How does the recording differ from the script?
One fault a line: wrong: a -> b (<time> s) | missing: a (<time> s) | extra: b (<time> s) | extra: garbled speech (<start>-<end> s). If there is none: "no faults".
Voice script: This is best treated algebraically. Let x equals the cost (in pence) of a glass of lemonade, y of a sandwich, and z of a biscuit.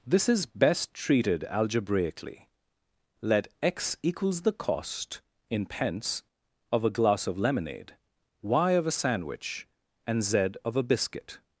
no faults